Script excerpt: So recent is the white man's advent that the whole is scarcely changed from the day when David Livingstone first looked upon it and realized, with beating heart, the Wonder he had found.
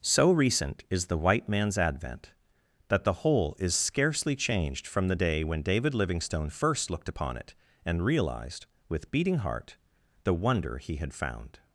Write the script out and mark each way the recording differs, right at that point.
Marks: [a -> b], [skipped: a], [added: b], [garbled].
So recent is the white man's advent that the whole is scarcely changed from the day when David Livingstone first looked upon it and realized, with beating heart, the Wonder he had found.